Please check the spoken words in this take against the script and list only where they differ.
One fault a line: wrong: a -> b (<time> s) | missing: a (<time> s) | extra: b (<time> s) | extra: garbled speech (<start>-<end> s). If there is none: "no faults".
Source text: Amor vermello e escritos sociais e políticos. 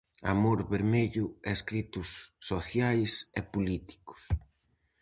no faults